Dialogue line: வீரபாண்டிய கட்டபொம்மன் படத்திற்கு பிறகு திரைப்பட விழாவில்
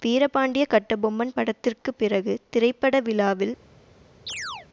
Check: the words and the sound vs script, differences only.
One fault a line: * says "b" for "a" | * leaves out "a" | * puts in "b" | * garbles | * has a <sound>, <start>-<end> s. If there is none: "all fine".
* has a chirp, 4.3-4.7 s